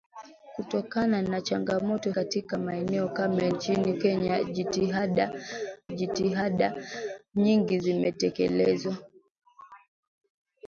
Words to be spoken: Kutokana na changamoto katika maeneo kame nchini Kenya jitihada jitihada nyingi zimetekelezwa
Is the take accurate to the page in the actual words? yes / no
yes